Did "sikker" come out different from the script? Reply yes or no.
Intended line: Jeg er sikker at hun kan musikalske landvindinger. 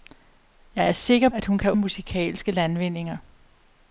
no